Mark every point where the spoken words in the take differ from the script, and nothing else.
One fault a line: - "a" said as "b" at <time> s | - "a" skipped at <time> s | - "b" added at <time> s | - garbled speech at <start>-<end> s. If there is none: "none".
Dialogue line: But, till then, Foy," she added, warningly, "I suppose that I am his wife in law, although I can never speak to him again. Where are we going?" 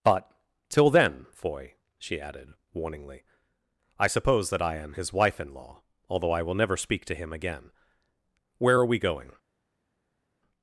- "can" said as "will" at 6.4 s